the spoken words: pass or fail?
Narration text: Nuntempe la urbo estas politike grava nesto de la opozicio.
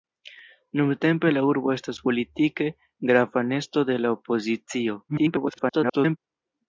fail